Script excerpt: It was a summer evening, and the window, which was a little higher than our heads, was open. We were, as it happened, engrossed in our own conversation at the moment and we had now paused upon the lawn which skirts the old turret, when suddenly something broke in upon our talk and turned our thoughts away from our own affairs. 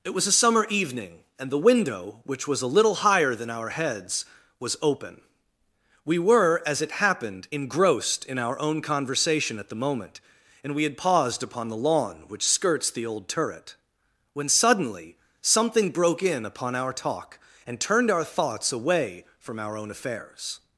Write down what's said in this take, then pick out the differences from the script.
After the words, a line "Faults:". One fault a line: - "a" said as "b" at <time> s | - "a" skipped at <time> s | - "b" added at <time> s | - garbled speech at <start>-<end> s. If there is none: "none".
It was a summer evening, and the window, which was a little higher than our heads, was open. We were, as it happened, engrossed in our own conversation at the moment and we had paused upon the lawn which skirts the old turret, when suddenly something broke in upon our talk and turned our thoughts away from our own affairs.
Faults:
- "now" skipped at 11.0 s